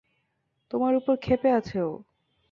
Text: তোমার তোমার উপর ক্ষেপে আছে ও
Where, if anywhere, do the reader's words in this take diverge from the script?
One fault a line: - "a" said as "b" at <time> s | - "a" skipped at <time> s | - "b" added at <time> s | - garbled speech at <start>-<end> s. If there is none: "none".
- "তোমার" skipped at 0.9 s